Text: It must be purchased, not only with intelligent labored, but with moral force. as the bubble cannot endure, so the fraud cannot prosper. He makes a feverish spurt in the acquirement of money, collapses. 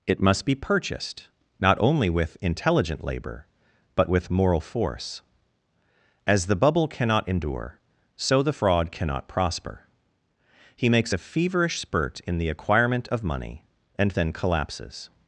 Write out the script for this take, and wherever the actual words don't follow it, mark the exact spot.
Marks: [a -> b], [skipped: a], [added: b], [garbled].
It must be purchased, not only with intelligent [labored, -> labor] but with moral force. as the bubble cannot endure, so the fraud cannot prosper. He makes a feverish spurt in the acquirement of money, [added: and then] collapses.